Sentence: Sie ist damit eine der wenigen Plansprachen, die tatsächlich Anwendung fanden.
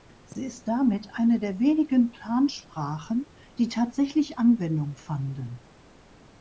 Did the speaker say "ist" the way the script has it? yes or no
yes